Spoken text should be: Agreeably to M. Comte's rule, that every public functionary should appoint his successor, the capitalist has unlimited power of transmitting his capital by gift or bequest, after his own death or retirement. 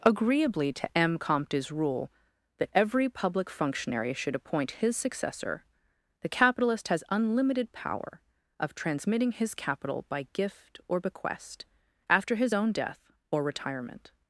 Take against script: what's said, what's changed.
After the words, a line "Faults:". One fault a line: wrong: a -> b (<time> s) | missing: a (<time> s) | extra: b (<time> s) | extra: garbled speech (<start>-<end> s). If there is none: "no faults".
Agreeably to M. Comte's rule, that every public functionary should appoint his successor, the capitalist has unlimited power of transmitting his capital by gift or bequest, after his own death or retirement.
Faults:
no faults